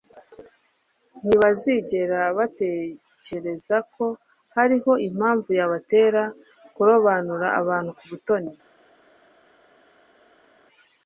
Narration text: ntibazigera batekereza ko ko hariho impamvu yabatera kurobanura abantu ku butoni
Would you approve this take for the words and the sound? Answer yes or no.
no